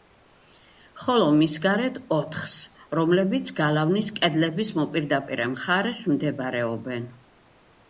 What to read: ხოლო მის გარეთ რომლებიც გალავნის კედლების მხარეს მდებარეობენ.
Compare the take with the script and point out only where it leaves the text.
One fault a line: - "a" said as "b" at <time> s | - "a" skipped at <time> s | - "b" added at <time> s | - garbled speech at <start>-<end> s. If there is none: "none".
- "ოთხს" added at 2.1 s
- "მოპირდაპირე" added at 4.8 s